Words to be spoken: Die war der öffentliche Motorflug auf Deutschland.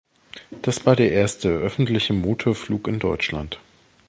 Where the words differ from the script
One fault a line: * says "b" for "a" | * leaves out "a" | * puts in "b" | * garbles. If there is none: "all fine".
* says "Das" for "Die"
* puts in "erste"
* says "in" for "auf"